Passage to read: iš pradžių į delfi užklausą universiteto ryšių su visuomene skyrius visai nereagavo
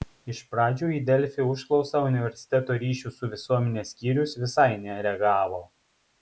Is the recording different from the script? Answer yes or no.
no